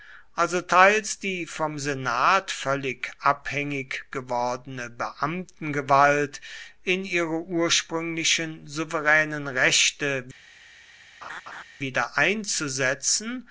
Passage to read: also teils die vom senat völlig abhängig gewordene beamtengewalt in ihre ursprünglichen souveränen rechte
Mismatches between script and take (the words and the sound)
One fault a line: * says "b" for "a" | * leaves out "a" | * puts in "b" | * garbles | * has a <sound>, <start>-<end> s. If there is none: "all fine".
* has a laugh, 11.2-11.6 s